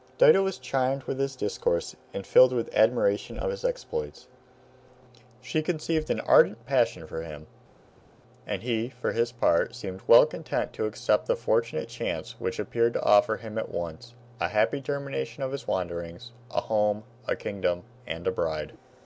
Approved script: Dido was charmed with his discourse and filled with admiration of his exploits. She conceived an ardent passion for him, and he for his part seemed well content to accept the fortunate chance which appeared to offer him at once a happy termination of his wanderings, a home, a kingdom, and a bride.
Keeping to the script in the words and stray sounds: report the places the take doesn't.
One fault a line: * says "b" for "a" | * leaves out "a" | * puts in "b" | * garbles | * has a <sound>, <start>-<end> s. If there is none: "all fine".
all fine